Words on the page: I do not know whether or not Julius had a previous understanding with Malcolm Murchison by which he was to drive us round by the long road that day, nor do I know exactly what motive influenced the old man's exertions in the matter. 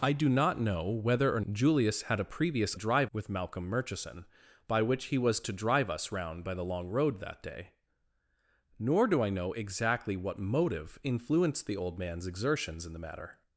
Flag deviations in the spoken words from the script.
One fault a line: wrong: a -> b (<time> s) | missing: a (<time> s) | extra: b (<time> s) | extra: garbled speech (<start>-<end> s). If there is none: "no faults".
missing: not (1.4 s)
wrong: understanding -> drive (2.7 s)